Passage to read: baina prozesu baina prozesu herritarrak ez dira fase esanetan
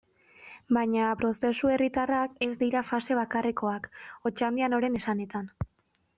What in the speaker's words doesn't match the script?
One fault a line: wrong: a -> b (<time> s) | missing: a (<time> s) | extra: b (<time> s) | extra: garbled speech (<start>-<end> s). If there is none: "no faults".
missing: baina prozesu (1.7 s)
extra: bakarrekoak otxandianoren (3.2 s)